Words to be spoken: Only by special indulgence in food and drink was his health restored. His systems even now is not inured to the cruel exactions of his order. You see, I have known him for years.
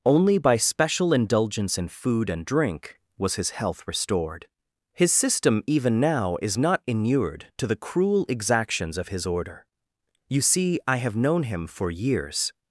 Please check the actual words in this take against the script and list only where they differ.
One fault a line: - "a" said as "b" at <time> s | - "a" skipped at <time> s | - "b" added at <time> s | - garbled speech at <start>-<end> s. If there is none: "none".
- "systems" said as "system" at 5.1 s